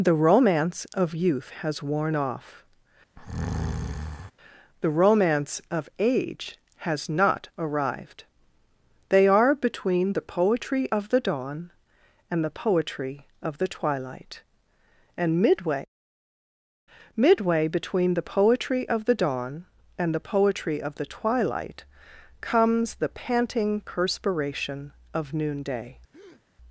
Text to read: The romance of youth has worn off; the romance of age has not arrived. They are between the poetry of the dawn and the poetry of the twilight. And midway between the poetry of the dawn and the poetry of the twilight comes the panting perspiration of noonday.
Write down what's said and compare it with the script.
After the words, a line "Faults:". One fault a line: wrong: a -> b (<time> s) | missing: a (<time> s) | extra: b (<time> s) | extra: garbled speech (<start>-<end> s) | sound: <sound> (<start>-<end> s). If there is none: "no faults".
The romance of youth has worn off; the romance of age has not arrived. They are between the poetry of the dawn and the poetry of the twilight. And midway midway between the poetry of the dawn and the poetry of the twilight comes the panting perspiration of noonday.
Faults:
sound: breath (3.2-4.3 s)
extra: midway (17.2 s)
sound: breath (26.1-26.4 s)